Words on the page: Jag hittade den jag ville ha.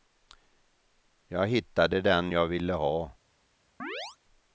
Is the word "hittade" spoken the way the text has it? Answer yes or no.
yes